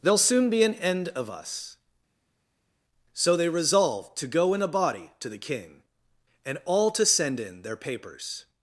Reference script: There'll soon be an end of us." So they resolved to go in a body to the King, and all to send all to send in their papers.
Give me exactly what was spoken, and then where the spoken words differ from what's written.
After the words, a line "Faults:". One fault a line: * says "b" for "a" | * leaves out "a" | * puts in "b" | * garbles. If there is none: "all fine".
There'll soon be an end of us." So they resolved to go in a body to the King, and all to send in their papers.
Faults:
* leaves out "all to send"